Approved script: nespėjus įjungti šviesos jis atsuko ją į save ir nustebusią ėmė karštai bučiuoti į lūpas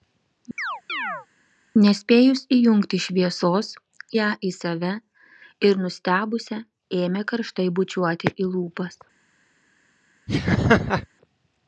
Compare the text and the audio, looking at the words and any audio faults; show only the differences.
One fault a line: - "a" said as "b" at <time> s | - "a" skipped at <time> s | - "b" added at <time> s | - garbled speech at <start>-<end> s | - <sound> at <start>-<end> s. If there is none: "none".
- chirp at 0.6-1.3 s
- "jis atsuko" skipped at 3.7 s
- laugh at 10.3-11.1 s